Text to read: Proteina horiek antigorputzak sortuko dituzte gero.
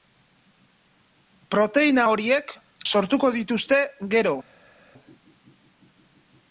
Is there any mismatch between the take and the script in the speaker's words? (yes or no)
yes